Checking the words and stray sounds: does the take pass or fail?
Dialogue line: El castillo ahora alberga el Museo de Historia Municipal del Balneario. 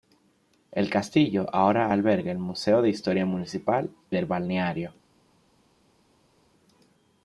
pass